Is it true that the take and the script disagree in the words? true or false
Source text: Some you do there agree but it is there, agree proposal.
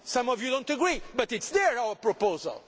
true